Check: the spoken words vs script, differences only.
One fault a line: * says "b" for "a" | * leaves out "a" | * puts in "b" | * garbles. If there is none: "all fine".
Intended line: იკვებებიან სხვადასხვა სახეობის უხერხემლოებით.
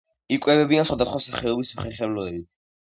all fine